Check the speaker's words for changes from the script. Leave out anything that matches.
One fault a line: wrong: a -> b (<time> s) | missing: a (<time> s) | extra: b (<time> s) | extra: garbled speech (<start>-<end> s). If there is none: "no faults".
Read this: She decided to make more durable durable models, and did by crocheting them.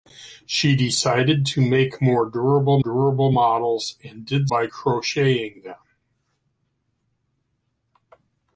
no faults